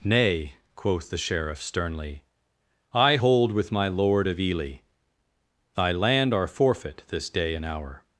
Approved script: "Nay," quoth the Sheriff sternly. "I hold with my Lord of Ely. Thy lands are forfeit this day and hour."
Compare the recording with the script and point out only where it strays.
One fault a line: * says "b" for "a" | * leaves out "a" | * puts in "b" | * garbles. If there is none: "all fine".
* says "land" for "lands"